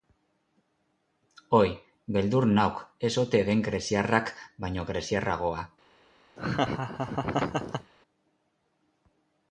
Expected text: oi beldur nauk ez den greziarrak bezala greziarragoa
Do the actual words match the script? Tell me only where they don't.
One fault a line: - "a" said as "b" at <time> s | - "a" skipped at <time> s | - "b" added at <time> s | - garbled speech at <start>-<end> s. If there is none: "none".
- "ote" added at 3.3 s
- "bezala" said as "baino" at 4.7 s